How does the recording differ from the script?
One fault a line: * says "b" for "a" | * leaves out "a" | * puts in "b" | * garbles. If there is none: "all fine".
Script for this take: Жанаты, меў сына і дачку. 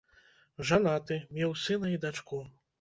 all fine